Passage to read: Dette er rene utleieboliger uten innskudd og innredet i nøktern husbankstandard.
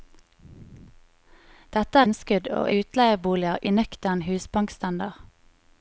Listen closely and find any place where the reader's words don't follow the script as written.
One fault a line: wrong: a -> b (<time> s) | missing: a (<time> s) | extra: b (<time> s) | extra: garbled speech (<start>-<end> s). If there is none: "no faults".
missing: rene utleieboliger uten (2.1 s)
wrong: innredet -> utleieboliger (2.8 s)